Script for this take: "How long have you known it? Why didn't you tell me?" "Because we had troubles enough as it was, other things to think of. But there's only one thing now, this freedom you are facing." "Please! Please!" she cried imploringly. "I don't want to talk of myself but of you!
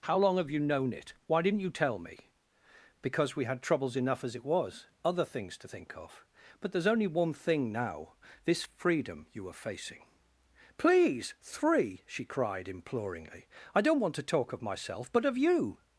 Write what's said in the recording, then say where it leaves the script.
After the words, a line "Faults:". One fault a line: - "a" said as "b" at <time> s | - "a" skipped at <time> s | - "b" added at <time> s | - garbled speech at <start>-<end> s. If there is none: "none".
"How long have you known it? Why didn't you tell me?" "Because we had troubles enough as it was, other things to think of. But there's only one thing now, this freedom you are facing." "Please! Three!" she cried imploringly. "I don't want to talk of myself but of you!
Faults:
- "Please" said as "Three" at 11.4 s